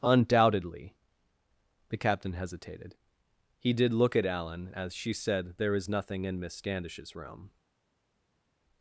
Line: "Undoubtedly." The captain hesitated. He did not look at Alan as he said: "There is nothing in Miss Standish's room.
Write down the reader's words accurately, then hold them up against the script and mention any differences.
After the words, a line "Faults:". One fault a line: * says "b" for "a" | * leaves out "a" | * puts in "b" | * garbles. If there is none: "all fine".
"Undoubtedly." The captain hesitated. He did look at Alan as she said: "There is nothing in Miss Standish's room.
Faults:
* leaves out "not"
* says "she" for "he"